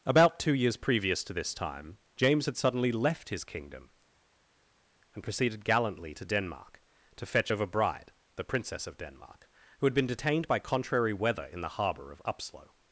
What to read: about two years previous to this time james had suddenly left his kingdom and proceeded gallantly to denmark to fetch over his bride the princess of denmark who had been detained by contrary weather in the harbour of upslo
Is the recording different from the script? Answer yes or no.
yes